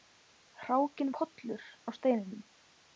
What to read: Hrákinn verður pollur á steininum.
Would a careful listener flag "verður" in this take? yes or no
yes